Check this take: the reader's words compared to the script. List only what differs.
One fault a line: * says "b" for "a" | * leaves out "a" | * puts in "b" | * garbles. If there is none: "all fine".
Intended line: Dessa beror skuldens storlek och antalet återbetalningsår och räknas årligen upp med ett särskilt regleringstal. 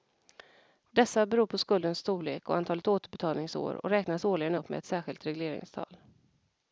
* puts in "på"